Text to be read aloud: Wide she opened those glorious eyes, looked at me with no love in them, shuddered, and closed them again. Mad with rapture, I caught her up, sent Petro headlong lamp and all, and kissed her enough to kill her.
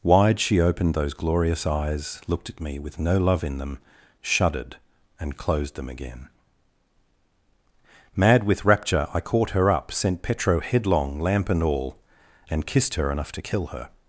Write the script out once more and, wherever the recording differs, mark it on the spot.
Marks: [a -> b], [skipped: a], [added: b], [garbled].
Wide she opened those glorious eyes, looked at me with no love in them, shuddered, and closed them again. Mad with rapture, I caught her up, sent Petro headlong lamp and all, and kissed her enough to kill her.